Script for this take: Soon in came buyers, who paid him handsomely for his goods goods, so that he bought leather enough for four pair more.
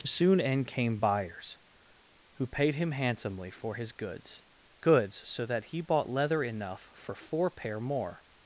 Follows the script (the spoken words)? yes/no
yes